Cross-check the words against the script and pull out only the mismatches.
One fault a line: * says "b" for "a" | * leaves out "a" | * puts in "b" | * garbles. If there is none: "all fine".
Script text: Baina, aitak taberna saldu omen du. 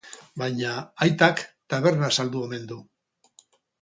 all fine